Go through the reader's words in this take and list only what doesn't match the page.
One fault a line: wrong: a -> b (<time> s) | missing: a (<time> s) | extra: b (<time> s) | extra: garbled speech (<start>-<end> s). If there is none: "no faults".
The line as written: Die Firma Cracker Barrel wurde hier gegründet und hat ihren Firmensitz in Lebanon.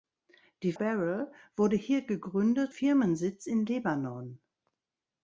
missing: Firma Cracker (0.7 s)
missing: und hat ihren (2.7 s)